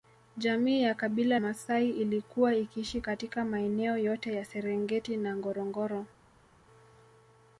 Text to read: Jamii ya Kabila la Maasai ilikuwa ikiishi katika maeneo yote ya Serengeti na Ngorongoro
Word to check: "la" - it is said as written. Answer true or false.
false